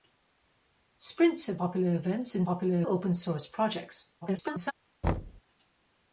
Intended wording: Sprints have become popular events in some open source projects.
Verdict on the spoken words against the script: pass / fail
fail